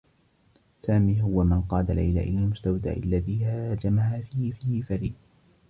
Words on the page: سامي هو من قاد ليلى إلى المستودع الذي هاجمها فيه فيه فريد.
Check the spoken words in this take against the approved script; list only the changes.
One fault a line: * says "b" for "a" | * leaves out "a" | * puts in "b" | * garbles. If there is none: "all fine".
all fine